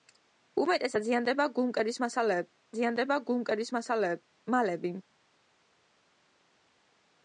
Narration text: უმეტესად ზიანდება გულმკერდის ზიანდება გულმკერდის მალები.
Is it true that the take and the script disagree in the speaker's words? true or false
false